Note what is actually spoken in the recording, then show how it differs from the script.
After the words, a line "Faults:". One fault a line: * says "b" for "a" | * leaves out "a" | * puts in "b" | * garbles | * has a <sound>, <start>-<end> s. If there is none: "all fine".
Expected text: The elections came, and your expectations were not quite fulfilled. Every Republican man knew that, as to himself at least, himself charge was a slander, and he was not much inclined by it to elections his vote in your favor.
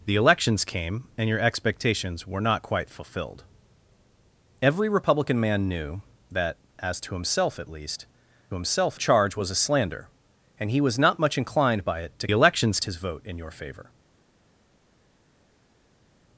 The elections came, and your expectations were not quite fulfilled. Every Republican man knew that, as to himself at least, himself charge was a slander, and he was not much inclined by it to elections his vote in your favor.
Faults:
all fine